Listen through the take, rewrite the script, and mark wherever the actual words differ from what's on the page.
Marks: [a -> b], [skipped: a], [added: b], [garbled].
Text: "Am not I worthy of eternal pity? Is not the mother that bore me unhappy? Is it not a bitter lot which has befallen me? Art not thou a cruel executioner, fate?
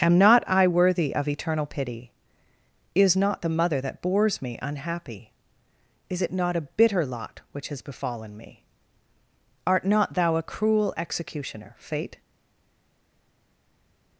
"Am not I worthy of eternal pity? Is not the mother that [bore -> bores] me unhappy? Is it not a bitter lot which has befallen me? Art not thou a cruel executioner, fate?